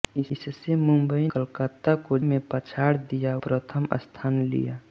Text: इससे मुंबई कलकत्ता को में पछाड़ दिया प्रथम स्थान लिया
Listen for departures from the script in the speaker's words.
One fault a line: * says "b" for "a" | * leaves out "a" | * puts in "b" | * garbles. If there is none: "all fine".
all fine